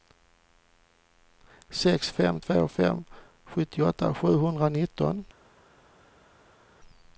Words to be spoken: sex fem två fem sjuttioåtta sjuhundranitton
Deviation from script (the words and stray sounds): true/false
false